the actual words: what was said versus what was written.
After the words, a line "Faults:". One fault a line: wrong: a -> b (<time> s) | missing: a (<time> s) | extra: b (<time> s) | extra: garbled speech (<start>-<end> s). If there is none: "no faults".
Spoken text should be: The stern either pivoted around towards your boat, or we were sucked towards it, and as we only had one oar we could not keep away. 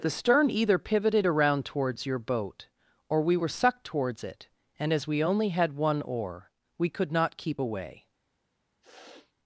The stern either pivoted around towards your boat, or we were sucked towards it, and as we only had one oar we could not keep away.
Faults:
no faults